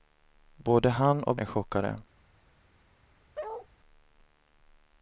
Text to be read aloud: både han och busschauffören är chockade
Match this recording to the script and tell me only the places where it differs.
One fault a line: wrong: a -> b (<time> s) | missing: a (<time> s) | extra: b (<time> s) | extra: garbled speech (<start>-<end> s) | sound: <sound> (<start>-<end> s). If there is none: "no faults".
missing: busschauffören (1.3 s)
sound: bark (3.3-3.7 s)